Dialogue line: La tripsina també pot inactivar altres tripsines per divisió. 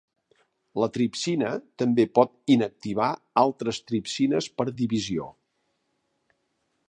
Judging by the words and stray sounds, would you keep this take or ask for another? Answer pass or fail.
pass